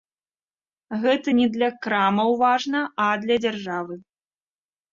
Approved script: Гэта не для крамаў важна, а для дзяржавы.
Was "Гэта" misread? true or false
false